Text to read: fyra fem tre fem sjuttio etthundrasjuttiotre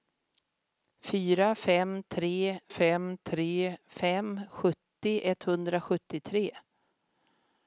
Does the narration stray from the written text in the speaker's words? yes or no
yes